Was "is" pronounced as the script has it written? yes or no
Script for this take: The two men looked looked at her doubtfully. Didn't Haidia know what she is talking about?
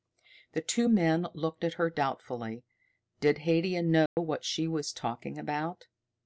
no